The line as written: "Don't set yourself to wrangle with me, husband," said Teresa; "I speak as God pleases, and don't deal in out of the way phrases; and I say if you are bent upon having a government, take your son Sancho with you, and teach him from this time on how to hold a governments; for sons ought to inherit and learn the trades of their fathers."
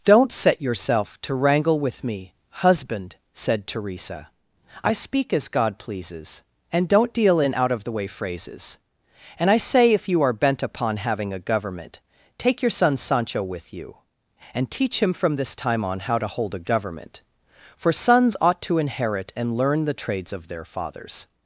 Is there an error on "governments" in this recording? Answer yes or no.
yes